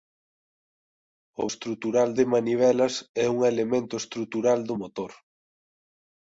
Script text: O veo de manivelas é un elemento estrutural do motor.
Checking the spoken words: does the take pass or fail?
fail